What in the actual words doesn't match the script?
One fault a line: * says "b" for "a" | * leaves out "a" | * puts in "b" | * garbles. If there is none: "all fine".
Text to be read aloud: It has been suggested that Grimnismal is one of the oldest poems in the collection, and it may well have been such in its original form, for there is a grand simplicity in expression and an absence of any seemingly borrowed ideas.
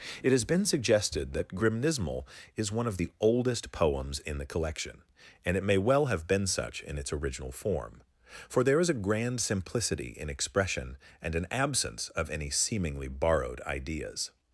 all fine